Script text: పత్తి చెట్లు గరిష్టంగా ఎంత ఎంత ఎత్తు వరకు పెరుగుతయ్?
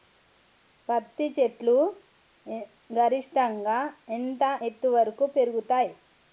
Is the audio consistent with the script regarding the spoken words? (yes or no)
no